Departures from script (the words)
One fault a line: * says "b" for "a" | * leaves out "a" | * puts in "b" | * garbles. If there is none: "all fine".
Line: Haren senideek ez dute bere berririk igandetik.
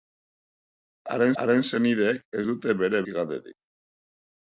* puts in "haren"
* leaves out "berririk"